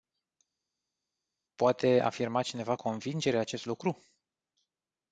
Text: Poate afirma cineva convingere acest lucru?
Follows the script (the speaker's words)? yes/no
yes